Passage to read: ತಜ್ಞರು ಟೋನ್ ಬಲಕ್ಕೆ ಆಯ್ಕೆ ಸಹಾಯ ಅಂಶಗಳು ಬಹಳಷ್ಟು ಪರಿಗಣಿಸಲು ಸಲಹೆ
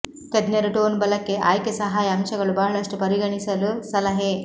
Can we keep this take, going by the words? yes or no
yes